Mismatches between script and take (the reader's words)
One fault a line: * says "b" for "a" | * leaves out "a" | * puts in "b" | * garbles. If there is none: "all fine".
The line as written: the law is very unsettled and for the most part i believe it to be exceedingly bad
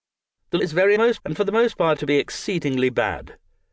* leaves out "law"
* says "most" for "unsettled"
* leaves out "i believe it"